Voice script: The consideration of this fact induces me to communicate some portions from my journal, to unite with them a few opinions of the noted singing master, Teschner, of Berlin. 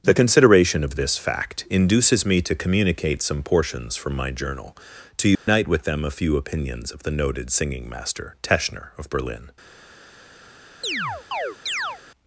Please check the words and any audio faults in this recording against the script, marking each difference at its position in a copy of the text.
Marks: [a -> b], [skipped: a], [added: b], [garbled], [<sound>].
The consideration of this fact induces me to communicate some portions from my journal, to unite [dropout] with them a few opinions of the noted singing master, Teschner, of Berlin. [chirp]